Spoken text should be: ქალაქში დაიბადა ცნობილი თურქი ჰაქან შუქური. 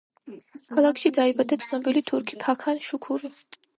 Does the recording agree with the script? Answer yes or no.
yes